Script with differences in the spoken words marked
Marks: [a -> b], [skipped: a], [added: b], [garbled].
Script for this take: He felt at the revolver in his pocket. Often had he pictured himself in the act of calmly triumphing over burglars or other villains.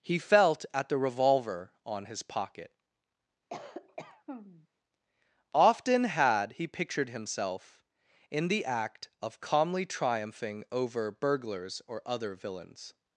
He felt at the revolver [in -> on] his pocket. Often had he pictured himself in the act of calmly triumphing over burglars or other villains.